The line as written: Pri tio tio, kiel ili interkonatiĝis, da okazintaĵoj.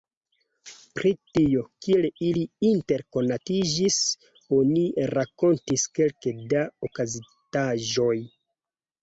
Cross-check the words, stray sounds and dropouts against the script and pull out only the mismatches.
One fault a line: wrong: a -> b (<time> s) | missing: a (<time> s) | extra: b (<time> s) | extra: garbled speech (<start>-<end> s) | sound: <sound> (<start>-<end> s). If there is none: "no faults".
missing: tio (1.6 s)
extra: oni rakontis kelke (4.6 s)